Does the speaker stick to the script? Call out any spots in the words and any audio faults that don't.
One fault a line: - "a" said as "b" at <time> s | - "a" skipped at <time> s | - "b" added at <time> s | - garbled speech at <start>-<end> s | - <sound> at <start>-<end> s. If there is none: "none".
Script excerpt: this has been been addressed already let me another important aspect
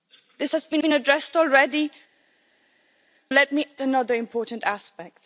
none